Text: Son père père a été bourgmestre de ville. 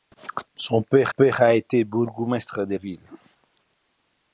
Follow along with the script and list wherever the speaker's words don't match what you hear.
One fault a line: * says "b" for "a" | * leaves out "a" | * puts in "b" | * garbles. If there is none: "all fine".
all fine